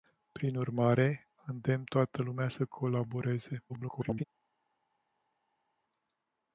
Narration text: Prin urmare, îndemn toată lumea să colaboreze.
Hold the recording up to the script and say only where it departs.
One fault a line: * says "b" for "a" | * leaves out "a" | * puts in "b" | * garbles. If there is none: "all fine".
* garbles